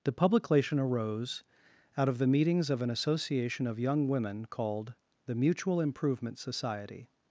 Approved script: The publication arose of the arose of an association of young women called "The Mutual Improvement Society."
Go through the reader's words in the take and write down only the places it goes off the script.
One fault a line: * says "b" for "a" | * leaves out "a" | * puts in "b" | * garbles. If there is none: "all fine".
* puts in "out"
* says "meetings" for "arose"